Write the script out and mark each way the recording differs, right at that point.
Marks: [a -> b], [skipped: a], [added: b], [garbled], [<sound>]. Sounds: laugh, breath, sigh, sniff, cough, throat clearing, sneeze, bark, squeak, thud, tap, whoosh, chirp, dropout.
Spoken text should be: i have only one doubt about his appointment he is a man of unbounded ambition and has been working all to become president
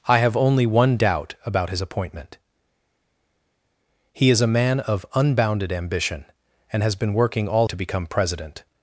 i have only one doubt about his appointment he is a man of unbounded ambition and has been working all to become president